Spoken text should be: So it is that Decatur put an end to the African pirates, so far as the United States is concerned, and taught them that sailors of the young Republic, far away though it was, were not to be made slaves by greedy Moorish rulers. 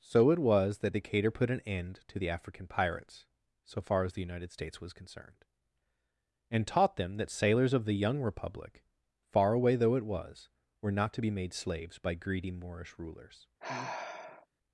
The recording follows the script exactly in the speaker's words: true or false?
false